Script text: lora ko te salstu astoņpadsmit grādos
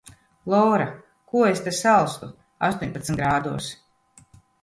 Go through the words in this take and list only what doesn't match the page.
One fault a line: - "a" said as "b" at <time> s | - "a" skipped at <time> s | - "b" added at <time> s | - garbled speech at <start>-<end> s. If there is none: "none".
- "es" added at 1.5 s